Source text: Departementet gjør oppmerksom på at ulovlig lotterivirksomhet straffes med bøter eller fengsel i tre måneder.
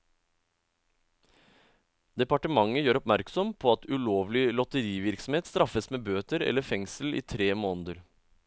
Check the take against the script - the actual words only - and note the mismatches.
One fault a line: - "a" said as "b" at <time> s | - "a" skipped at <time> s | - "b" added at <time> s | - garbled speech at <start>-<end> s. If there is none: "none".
none